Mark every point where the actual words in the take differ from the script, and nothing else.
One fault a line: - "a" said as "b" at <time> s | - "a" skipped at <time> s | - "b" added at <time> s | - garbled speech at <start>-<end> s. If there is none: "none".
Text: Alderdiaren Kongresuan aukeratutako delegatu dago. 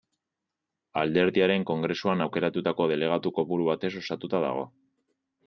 - "kopuru batez osatuta" added at 3.4 s